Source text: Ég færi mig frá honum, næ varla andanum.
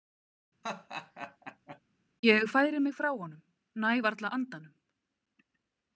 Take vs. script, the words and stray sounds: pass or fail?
fail